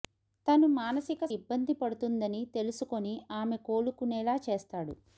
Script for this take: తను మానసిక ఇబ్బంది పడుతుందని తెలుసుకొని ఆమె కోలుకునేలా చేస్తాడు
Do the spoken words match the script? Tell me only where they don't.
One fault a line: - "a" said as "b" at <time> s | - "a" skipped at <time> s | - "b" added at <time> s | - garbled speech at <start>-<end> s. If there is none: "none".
none